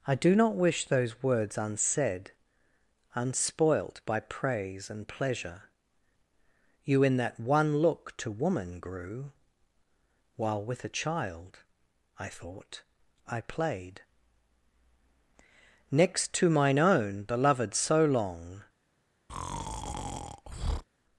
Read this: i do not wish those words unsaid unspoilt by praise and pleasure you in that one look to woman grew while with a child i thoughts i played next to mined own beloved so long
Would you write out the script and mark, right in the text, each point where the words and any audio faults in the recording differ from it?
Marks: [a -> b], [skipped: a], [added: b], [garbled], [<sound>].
i do not wish those words unsaid unspoilt by praise and pleasure you in that one look to woman grew while with a child i [thoughts -> thought] i played next to [mined -> mine] own beloved so long [breath]